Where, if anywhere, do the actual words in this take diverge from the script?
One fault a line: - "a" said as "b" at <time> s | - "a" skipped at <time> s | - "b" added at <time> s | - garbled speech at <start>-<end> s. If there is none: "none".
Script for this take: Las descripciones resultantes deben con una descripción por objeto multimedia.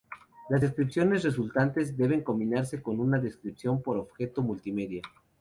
- "combinarse" added at 2.2 s